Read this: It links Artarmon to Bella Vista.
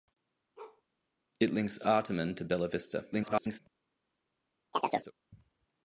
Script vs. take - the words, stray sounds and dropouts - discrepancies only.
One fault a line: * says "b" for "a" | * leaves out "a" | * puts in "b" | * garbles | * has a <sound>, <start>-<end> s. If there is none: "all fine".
* has a bark, 0.6-0.8 s
* garbles
* has a chirp, 4.7-5.1 s